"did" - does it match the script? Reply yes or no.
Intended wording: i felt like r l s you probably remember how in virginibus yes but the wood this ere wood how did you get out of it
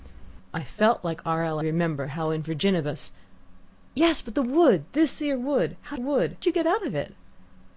no